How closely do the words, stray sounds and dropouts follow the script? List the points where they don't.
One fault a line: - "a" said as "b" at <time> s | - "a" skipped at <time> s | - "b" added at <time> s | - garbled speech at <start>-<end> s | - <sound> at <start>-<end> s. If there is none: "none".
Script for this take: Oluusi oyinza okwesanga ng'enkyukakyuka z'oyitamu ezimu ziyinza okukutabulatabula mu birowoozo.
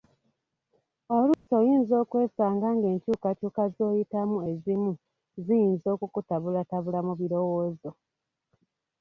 - dropout at 1.3-1.5 s